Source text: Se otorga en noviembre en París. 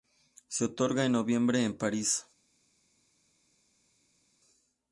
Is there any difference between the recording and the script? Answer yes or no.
no